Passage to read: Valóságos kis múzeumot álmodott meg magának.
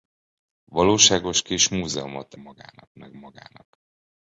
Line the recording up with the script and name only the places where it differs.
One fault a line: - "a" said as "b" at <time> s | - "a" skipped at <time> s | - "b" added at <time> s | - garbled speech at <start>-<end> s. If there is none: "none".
- "álmodott" said as "magának" at 2.4 s